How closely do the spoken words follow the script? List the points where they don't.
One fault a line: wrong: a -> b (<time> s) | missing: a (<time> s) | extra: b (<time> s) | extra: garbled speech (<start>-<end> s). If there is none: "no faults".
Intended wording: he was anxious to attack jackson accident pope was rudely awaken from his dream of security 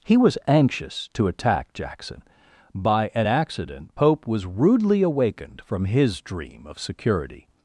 extra: by an (2.7 s)
wrong: awaken -> awakened (5.0 s)